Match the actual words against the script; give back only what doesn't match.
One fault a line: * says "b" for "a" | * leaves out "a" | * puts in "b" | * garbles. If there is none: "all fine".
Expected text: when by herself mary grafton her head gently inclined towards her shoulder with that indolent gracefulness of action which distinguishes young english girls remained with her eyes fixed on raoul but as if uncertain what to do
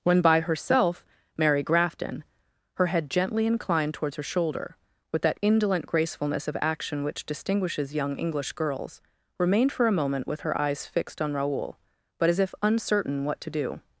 * puts in "for a moment"